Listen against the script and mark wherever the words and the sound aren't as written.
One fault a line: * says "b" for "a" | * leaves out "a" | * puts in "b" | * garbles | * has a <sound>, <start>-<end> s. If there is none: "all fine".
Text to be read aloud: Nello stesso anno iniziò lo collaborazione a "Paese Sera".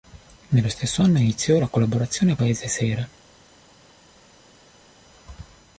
* says "la" for "lo"